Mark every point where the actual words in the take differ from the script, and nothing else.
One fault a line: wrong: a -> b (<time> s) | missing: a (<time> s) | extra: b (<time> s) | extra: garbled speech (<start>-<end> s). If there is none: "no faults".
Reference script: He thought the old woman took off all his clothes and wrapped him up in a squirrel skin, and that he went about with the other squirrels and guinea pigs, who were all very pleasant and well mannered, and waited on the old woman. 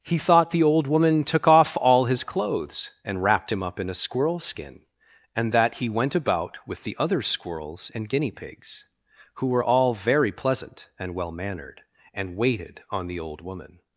no faults